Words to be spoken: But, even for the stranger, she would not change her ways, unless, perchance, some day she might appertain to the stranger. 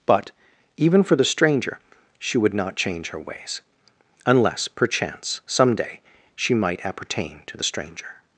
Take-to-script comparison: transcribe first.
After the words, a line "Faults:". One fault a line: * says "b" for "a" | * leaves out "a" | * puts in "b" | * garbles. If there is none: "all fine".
But, even for the stranger, she would not change her ways, unless, perchance, some day she might appertain to the stranger.
Faults:
all fine